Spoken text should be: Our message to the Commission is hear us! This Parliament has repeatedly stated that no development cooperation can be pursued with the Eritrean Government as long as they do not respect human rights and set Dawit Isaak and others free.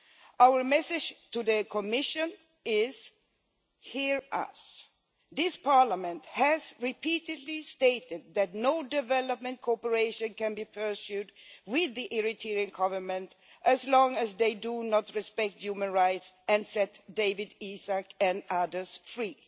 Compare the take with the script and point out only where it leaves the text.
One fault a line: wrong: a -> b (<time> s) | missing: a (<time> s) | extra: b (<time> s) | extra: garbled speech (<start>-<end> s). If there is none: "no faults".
no faults